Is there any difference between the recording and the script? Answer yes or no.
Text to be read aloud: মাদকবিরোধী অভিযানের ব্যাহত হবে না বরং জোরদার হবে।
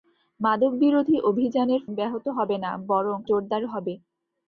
no